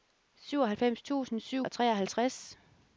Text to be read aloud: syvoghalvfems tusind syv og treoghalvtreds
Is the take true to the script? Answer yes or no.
yes